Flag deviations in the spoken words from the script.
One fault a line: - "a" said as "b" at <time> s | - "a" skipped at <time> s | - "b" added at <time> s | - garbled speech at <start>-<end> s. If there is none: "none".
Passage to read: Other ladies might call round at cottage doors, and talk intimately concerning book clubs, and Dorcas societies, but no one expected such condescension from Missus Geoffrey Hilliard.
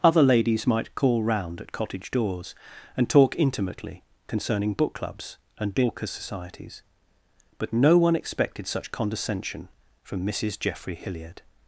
none